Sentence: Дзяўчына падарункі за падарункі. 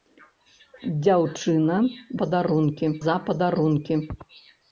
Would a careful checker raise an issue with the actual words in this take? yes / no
no